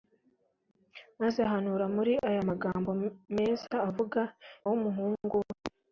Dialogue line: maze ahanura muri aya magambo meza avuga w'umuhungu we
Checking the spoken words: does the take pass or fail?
pass